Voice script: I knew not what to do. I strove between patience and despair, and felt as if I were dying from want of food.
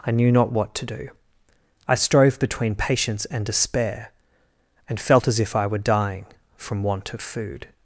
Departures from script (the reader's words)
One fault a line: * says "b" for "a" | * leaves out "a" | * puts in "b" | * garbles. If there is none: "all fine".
all fine